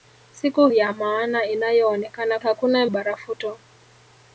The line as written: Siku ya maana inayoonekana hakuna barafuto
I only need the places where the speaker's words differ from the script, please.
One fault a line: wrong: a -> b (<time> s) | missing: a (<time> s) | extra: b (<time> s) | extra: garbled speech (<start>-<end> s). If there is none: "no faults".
no faults